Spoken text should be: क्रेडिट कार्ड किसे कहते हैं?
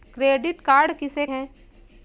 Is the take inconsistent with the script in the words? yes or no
yes